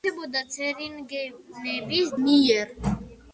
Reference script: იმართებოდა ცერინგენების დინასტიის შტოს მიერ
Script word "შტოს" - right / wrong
wrong